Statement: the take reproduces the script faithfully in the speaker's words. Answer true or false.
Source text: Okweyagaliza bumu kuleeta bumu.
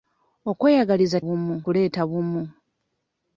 true